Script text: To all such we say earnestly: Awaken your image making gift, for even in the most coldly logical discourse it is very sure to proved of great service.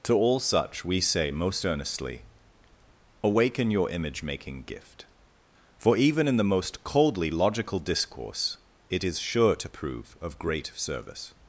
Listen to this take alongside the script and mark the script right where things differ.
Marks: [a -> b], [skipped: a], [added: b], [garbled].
To all such we say [added: most] earnestly: Awaken your image making gift, for even in the most coldly logical discourse it is [skipped: very] sure to [proved -> prove] of great service.